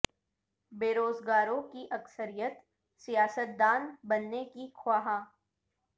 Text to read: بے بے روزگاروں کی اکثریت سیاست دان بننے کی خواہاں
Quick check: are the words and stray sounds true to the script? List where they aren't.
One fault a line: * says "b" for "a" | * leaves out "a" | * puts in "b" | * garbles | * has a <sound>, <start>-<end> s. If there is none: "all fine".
* leaves out "بے"